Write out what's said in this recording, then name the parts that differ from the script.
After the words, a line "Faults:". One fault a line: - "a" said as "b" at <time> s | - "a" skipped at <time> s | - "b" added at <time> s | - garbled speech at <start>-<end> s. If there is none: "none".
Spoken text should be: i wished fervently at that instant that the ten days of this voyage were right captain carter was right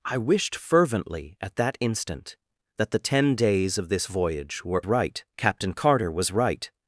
i wished fervently at that instant that the ten days of this voyage were right captain carter was right
Faults:
none